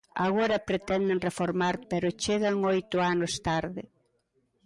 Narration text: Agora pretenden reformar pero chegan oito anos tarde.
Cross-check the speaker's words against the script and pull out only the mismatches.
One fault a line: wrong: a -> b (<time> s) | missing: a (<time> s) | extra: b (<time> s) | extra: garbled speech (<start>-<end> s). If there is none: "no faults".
no faults